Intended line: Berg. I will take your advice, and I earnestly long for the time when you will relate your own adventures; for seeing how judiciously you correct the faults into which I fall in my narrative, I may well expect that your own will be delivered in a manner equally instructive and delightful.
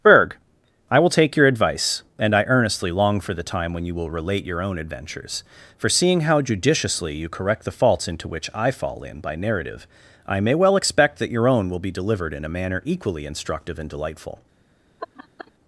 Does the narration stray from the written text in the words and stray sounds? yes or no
yes